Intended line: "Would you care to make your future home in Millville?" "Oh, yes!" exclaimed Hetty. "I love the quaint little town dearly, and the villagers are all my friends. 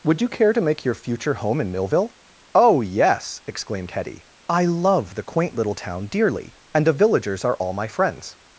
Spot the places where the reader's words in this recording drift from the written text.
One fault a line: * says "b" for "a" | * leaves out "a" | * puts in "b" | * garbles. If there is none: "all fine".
all fine